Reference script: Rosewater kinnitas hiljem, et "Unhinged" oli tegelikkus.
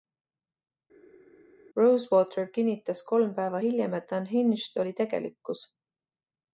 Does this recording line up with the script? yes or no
no